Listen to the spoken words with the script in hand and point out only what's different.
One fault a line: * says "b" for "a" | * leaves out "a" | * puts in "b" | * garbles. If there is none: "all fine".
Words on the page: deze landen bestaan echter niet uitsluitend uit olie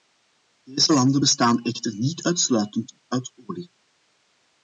all fine